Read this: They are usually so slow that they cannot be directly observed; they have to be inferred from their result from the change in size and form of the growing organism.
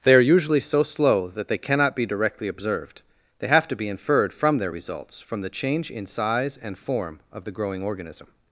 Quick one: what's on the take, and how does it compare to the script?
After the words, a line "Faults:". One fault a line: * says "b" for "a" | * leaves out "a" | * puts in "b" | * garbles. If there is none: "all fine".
They are usually so slow that they cannot be directly observed; they have to be inferred from their results from the change in size and form of the growing organism.
Faults:
* says "results" for "result"